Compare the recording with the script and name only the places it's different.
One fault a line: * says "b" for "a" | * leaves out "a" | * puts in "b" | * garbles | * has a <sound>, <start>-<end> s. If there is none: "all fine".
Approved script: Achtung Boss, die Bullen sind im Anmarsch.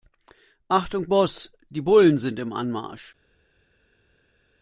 all fine